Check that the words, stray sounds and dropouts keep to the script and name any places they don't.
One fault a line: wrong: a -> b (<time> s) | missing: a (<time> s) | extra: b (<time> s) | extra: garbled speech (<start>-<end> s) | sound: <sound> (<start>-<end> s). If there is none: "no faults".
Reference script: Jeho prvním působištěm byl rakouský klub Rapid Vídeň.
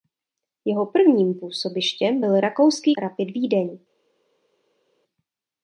missing: klub (2.9 s)